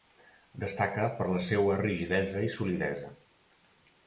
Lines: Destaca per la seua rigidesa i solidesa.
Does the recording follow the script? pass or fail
pass